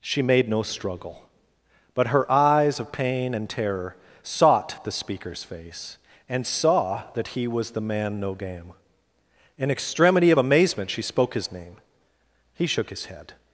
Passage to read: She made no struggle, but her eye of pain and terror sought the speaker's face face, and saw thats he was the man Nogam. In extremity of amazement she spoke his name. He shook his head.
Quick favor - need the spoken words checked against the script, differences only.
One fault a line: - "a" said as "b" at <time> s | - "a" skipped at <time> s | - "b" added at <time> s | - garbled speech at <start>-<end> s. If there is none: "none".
- "eye" said as "eyes" at 2.3 s
- "face" skipped at 6.0 s
- "thats" said as "that" at 7.1 s